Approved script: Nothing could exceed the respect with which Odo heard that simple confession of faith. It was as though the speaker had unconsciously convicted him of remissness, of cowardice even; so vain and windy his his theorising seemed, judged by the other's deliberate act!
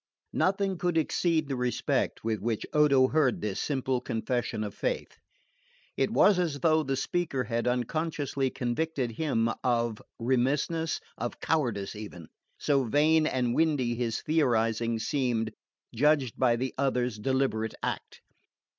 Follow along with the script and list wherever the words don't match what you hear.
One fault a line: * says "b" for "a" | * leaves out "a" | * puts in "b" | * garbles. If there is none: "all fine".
* says "this" for "that"
* leaves out "his"